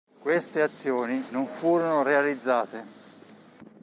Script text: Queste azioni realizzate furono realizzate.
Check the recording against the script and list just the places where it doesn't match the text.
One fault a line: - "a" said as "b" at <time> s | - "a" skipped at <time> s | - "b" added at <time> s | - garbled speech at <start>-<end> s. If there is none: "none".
- "realizzate" said as "non" at 1.3 s